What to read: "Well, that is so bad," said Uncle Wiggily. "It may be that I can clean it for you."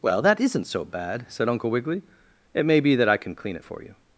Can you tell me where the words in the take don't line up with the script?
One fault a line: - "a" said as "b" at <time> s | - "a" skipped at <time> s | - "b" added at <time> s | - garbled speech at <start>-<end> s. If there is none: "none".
- "is" said as "isn't" at 0.4 s